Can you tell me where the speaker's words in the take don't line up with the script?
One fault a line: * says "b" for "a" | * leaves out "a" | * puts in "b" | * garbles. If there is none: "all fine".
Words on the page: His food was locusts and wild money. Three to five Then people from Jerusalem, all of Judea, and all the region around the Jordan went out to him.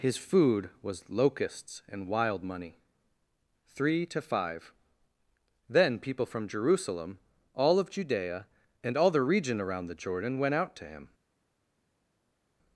all fine